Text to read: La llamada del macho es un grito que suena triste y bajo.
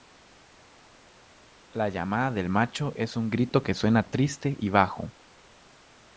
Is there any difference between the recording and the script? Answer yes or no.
no